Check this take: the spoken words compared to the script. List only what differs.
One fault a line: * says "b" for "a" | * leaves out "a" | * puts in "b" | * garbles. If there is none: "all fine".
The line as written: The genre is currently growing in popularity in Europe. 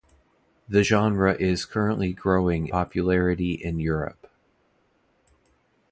* leaves out "in"